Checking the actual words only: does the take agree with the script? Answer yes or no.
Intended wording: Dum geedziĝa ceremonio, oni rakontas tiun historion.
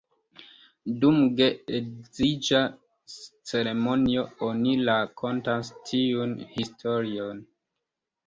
yes